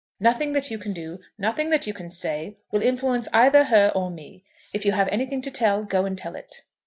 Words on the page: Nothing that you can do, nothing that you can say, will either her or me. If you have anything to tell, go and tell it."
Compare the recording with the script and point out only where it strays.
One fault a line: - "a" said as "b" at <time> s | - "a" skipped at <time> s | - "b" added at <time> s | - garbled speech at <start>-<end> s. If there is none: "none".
- "influence" added at 2.8 s